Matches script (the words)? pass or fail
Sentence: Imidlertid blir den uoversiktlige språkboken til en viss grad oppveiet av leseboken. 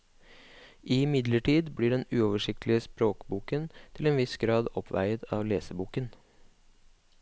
pass